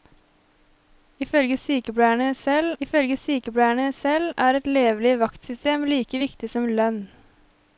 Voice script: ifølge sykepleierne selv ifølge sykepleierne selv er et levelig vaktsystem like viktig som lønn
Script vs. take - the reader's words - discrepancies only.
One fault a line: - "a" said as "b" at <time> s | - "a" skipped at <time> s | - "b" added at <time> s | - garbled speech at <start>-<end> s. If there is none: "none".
none